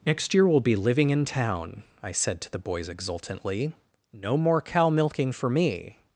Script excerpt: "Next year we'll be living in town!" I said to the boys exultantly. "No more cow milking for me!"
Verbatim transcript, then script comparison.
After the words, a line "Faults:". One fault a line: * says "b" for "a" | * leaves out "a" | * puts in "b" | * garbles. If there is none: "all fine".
"Next year we'll be living in town!" I said to the boys exultantly. "No more cow milking for me!"
Faults:
all fine